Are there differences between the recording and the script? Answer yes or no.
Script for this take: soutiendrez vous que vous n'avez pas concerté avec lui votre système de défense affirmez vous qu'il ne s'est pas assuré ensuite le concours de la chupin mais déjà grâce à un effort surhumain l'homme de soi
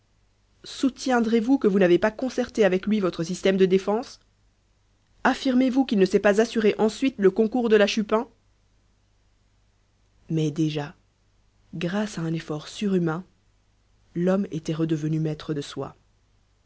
yes